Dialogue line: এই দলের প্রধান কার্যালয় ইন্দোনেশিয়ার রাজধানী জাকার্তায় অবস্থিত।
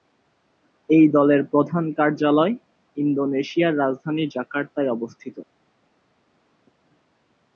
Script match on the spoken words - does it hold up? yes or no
yes